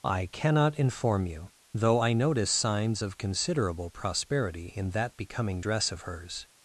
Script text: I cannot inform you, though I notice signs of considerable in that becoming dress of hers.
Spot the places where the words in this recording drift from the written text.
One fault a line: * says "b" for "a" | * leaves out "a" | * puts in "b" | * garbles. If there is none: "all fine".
* puts in "prosperity"